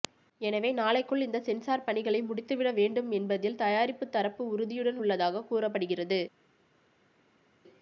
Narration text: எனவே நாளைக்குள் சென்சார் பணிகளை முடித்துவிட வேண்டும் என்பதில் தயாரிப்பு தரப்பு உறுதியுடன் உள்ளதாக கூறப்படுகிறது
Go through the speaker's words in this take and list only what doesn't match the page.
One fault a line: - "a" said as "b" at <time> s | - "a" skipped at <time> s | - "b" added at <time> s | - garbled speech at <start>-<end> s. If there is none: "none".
- "இந்த" added at 1.2 s